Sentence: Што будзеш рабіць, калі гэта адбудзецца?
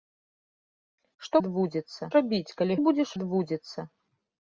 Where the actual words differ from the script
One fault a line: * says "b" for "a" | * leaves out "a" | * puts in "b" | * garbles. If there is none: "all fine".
* says "адбудзецца" for "будзеш"
* says "будзеш" for "гэта"